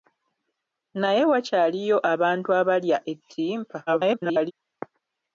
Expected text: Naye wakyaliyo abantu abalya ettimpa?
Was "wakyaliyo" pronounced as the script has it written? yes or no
yes